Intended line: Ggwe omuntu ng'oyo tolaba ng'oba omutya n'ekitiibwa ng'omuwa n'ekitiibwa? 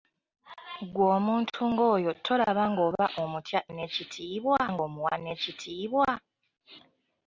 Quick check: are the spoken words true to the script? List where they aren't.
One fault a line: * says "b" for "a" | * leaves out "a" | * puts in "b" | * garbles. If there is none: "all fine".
all fine